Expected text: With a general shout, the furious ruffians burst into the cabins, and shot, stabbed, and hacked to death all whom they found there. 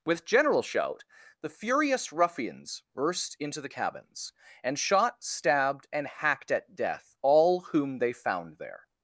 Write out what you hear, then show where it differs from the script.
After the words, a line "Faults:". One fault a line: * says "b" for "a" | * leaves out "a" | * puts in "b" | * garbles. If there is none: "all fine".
With general shout, the furious ruffians burst into the cabins, and shot, stabbed, and hacked at death all whom they found there.
Faults:
* leaves out "a"
* says "at" for "to"